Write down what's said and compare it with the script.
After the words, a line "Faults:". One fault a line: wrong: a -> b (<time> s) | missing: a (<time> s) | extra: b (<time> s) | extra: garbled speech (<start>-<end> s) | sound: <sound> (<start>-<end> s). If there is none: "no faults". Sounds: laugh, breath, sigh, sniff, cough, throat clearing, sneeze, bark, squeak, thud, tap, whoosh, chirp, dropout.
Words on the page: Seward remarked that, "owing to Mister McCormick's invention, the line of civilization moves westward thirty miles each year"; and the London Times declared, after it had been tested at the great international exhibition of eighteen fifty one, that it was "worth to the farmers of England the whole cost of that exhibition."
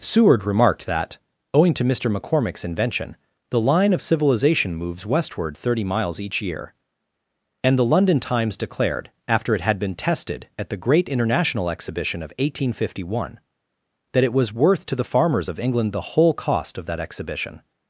Seward remarked that, "owing to Mister McCormick's invention, the line of civilization moves westward thirty miles each year"; and the London Times declared, after it had been tested at the great international exhibition of eighteen fifty one, that it was "worth to the farmers of England the whole cost of that exhibition."
Faults:
no faults